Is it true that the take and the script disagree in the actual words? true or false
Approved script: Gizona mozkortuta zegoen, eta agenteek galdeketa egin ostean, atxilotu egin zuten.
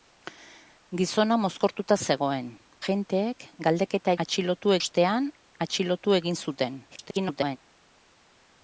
true